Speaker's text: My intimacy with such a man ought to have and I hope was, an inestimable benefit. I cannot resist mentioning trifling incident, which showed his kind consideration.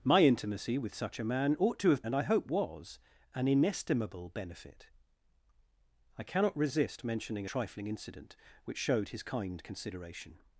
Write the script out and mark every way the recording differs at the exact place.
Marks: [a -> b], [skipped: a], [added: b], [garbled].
My intimacy with such a man ought to have and I hope was, an inestimable benefit. I cannot resist mentioning trifling incident, which showed his kind consideration.